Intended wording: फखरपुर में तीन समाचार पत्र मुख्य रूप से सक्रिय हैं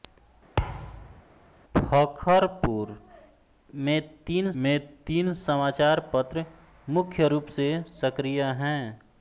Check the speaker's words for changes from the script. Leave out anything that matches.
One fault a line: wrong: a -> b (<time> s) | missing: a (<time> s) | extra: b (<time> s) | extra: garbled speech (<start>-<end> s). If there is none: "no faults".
extra: में तीन (4.6 s)